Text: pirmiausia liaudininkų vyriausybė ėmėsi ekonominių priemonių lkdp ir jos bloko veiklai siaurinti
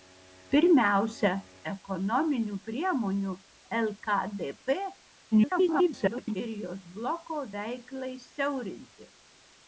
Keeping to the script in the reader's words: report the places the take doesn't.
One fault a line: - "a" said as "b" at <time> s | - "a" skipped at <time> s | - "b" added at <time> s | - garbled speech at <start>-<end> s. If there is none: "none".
- "liaudininkų vyriausybė ėmėsi" skipped at 1.3 s
- garbled speech at 5.3-6.4 s